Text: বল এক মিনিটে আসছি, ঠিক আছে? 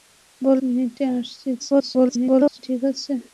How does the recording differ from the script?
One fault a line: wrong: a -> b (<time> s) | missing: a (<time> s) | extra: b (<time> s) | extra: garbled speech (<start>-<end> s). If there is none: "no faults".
missing: এক (0.6 s)
extra: garbled speech (1.6-2.6 s)